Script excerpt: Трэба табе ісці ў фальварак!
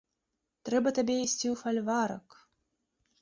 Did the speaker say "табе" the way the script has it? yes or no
yes